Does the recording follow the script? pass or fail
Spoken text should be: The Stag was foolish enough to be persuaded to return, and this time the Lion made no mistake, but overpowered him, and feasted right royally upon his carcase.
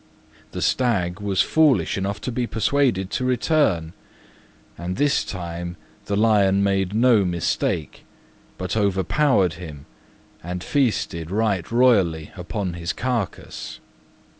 pass